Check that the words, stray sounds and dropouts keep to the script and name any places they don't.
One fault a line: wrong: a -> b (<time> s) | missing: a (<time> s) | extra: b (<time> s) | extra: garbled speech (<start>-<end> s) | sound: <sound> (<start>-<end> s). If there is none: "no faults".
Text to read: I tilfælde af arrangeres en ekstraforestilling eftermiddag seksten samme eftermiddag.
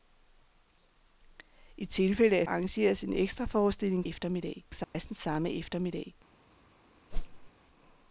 sound: dropout (4.8-4.9 s)
sound: whoosh (7.1-7.5 s)